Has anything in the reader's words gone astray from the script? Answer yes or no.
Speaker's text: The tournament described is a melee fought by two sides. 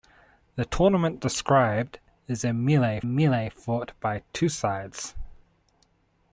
yes